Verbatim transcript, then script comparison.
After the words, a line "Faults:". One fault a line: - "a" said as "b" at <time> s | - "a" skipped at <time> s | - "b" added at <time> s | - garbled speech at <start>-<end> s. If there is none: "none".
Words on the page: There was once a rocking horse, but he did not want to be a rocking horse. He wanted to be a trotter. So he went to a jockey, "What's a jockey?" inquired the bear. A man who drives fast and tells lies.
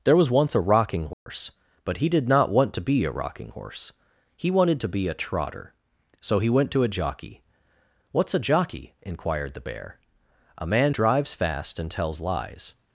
There was once a rocking horse, but he did not want to be a rocking horse. He wanted to be a trotter. So he went to a jockey, "What's a jockey?" inquired the bear. A man drives fast and tells lies.
Faults:
- "who" skipped at 10.9 s